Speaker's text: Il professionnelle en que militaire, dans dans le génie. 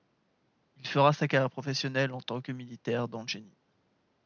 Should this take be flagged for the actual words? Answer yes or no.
yes